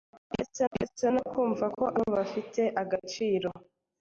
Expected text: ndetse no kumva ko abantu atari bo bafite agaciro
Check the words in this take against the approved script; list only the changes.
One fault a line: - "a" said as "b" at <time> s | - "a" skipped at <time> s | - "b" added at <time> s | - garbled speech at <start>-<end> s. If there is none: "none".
- "ndetse" added at 0.7 s
- "abantu atari" skipped at 1.9 s